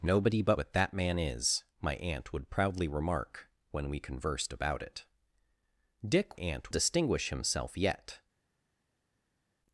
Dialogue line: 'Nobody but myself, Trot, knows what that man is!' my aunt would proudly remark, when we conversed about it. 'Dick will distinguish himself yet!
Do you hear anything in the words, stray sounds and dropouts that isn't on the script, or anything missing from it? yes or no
yes